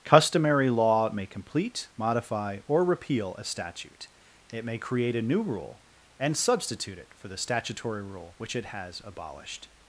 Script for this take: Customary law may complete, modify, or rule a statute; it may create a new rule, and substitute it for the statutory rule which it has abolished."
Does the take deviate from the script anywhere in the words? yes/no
yes